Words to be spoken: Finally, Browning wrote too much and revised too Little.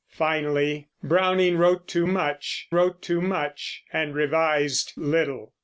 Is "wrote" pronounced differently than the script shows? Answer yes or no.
no